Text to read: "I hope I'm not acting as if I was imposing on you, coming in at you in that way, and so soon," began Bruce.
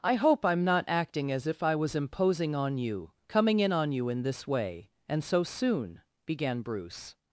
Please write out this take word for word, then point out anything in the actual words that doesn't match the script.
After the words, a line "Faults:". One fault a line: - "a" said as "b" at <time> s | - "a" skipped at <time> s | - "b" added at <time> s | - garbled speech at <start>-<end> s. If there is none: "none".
"I hope I'm not acting as if I was imposing on you, coming in on you in this way, and so soon," began Bruce.
Faults:
- "at" said as "on" at 3.7 s
- "that" said as "this" at 4.2 s